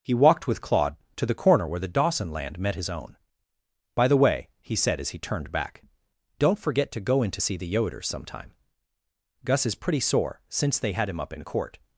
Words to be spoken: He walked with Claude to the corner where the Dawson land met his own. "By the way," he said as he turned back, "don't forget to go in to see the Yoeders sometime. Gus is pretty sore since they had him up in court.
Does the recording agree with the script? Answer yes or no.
yes